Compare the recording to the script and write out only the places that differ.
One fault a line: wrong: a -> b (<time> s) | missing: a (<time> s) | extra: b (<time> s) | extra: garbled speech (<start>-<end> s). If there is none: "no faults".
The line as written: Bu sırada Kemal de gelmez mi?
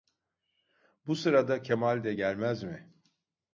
no faults